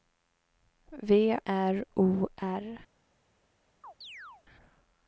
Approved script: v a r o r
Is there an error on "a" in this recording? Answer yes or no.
yes